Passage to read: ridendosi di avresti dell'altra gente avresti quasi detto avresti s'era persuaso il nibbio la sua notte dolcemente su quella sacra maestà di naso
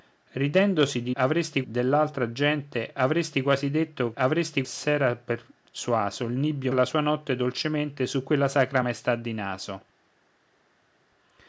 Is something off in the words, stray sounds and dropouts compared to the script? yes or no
no